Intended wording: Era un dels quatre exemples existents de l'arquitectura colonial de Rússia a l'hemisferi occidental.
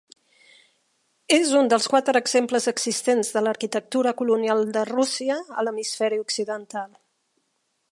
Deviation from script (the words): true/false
true